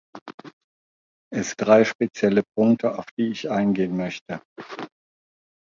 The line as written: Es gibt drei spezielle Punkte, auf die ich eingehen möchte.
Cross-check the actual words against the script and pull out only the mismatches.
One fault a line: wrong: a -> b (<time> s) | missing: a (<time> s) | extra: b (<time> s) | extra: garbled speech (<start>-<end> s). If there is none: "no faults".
missing: gibt (1.6 s)